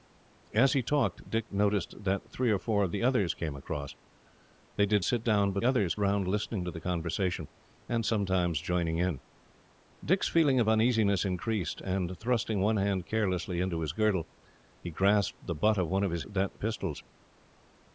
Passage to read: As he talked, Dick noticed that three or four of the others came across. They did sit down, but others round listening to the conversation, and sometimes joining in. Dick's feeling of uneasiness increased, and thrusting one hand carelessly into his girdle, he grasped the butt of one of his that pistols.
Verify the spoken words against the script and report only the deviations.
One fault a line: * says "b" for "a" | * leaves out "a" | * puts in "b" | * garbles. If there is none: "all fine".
all fine